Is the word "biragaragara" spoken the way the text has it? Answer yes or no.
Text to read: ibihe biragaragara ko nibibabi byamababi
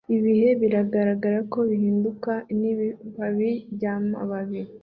yes